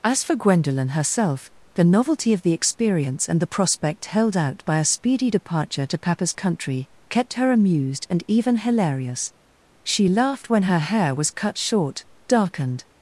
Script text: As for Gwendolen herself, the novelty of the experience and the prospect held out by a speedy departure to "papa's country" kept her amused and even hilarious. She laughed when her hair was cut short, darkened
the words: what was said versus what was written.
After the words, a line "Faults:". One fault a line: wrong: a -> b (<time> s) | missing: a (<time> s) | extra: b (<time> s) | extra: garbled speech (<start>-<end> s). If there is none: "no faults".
As for Gwendolen herself, the novelty of the experience and the prospect held out by a speedy departure to "papa's country" kept her amused and even hilarious. She laughed when her hair was cut short, darkened
Faults:
no faults